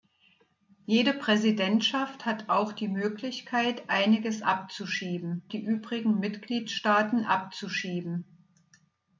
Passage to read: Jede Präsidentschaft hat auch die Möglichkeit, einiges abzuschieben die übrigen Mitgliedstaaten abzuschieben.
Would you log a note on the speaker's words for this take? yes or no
no